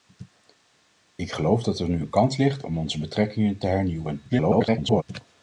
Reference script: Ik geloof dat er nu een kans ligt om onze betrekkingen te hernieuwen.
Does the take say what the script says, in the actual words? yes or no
no